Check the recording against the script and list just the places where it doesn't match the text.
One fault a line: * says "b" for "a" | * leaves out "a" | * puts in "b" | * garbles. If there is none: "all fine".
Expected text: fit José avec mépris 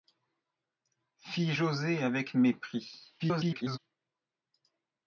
* garbles